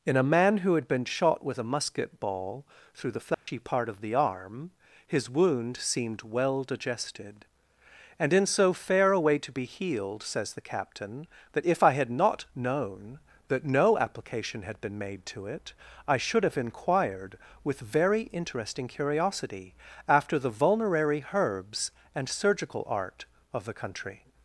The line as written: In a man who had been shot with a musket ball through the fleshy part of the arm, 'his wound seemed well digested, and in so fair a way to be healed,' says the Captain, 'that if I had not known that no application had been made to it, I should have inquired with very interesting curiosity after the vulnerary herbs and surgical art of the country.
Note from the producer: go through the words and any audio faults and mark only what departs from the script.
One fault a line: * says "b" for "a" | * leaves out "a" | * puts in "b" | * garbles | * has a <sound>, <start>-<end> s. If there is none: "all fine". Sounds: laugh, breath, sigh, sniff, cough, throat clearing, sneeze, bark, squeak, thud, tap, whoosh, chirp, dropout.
* has a dropout, 3.3-3.5 s